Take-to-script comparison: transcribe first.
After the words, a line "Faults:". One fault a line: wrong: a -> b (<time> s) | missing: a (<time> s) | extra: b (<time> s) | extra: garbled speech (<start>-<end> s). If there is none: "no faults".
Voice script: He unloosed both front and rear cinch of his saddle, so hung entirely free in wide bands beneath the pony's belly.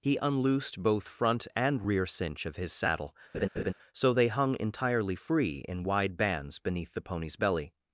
He unloosed both front and rear cinch of his saddle, so they hung entirely free in wide bands beneath the pony's belly.
Faults:
extra: they (4.1 s)